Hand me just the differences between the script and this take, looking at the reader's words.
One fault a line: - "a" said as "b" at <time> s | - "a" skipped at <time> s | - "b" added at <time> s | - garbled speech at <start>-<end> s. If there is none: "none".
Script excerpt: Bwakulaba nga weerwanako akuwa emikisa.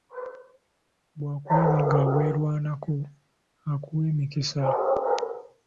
none